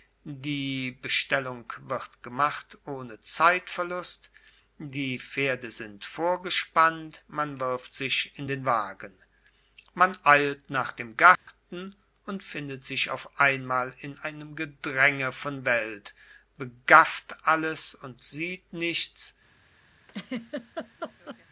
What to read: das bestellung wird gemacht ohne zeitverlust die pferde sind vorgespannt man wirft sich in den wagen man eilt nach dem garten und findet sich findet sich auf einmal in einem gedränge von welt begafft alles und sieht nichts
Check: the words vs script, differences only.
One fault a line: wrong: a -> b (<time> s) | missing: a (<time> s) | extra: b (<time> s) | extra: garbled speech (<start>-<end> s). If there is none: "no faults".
wrong: das -> die (0.2 s)
missing: findet sich (13.1 s)